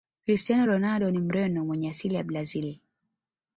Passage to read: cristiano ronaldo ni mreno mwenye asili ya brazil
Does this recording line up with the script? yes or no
yes